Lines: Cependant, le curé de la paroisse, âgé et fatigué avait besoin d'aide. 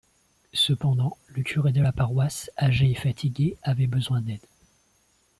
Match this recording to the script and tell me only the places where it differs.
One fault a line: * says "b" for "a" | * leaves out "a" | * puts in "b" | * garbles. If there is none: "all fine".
all fine